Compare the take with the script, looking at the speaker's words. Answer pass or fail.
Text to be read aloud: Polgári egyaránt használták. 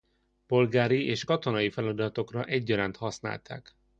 fail